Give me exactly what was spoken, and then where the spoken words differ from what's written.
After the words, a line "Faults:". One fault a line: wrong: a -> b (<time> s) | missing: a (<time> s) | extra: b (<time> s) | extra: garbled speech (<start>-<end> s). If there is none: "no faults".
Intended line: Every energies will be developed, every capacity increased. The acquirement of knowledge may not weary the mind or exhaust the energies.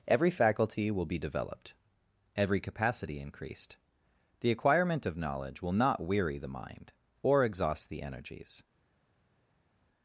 Every faculty will be developed, every capacity increased. The acquirement of knowledge will not weary the mind or exhaust the energies.
Faults:
wrong: energies -> faculty (0.3 s)
wrong: may -> will (5.6 s)